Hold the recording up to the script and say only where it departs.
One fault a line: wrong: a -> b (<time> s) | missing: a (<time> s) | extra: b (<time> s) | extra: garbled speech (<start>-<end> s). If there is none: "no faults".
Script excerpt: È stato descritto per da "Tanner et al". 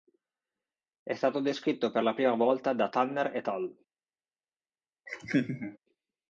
extra: la prima volta (2.0 s)